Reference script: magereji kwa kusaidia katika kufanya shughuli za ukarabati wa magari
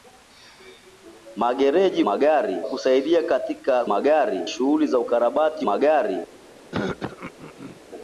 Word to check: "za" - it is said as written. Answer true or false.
true